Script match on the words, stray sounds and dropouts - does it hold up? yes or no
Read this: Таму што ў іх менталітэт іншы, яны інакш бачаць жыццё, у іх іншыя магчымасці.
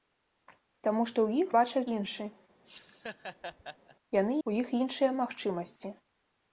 no